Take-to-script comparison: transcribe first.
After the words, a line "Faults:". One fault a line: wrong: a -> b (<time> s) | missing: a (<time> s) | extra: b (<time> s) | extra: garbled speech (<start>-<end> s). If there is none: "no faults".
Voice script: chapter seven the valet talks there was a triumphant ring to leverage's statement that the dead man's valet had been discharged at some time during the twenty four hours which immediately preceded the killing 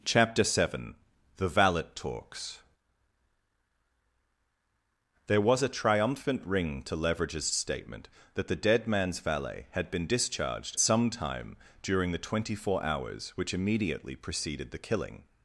chapter seven the valet talks there was a triumphant ring to leverage's statement that the dead man's valet had been discharged some time during the twenty four hours which immediately preceded the killing
Faults:
missing: at (10.8 s)